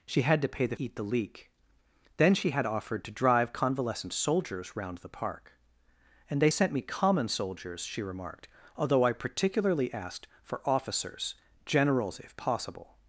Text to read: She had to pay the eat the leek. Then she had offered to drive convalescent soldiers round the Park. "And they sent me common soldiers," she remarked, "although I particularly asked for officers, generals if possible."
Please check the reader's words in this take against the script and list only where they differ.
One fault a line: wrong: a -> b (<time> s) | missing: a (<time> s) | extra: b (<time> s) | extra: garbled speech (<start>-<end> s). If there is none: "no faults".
no faults